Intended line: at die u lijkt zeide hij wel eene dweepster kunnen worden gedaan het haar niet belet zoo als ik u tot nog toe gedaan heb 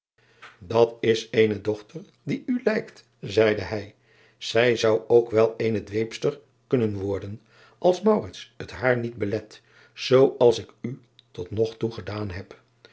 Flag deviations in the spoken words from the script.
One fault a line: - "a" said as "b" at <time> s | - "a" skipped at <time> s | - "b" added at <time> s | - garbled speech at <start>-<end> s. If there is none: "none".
- "is eene dochter" added at 1.0 s
- "zij zou ook" added at 4.4 s
- "gedaan" said as "als" at 7.8 s